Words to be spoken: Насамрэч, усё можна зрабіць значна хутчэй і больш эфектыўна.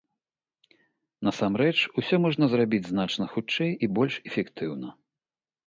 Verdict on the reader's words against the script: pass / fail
pass